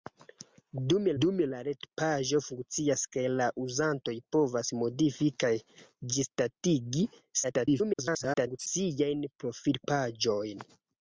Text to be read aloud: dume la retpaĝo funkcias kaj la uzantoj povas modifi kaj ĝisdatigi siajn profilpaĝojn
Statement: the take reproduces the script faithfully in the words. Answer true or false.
false